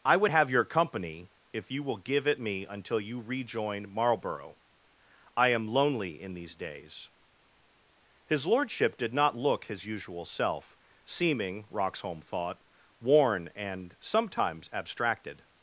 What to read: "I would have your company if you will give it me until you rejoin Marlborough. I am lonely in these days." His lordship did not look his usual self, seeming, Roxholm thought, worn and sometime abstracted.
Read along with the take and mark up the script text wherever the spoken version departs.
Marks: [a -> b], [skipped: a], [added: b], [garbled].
"I would have your company if you will give it me until you rejoin Marlborough. I am lonely in these days." His lordship did not look his usual self, seeming, Roxholm thought, worn and [sometime -> sometimes] abstracted.